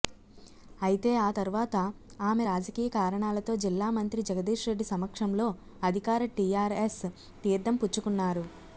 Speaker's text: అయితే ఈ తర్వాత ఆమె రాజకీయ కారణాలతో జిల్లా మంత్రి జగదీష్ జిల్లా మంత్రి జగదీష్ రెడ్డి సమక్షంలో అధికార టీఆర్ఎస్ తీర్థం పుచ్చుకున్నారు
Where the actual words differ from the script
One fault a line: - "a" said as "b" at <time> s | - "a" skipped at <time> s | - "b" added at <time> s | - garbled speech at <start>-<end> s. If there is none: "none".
- "ఈ" said as "ఆ" at 1.2 s
- "జిల్లా మంత్రి జగదీష్" skipped at 4.7 s